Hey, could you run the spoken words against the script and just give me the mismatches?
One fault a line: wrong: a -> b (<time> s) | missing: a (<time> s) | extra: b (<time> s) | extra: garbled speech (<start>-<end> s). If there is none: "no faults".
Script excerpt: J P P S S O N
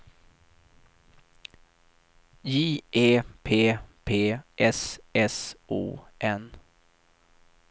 extra: E (2.9 s)